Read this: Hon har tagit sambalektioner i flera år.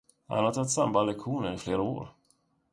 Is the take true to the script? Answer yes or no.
no